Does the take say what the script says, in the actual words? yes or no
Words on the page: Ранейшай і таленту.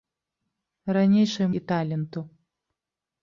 yes